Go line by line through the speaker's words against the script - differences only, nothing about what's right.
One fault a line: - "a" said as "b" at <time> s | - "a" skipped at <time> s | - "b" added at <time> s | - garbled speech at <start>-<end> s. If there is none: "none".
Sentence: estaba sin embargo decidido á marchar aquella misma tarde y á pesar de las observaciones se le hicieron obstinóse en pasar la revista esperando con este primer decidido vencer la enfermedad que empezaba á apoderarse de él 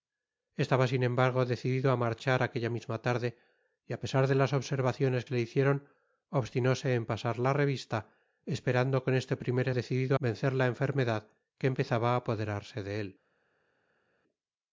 none